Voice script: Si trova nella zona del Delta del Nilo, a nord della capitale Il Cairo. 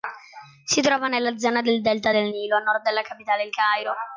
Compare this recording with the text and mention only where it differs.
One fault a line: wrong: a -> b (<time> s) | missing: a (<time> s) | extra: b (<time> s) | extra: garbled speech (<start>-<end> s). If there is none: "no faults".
no faults